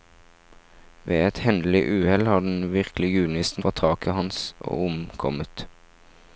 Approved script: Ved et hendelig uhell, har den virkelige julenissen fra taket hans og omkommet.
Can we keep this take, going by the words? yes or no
yes